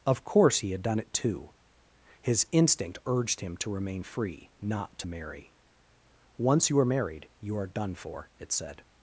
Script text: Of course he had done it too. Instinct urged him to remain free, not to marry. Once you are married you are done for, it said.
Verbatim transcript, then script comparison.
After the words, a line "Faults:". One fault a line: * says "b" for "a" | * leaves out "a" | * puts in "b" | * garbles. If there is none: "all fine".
Of course he had done it too. His instinct urged him to remain free, not to marry. Once you are married you are done for, it said.
Faults:
* puts in "His"